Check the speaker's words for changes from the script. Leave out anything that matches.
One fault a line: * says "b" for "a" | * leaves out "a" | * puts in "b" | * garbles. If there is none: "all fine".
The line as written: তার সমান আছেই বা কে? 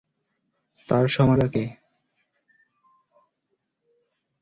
* leaves out "আছেই"